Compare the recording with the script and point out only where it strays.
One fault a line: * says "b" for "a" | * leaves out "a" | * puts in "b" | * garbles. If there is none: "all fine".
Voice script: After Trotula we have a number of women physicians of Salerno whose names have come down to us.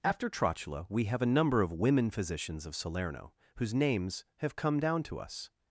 all fine